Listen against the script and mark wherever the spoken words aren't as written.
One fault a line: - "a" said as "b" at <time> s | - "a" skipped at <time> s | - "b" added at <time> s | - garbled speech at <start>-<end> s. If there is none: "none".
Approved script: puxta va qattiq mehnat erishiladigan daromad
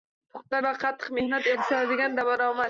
none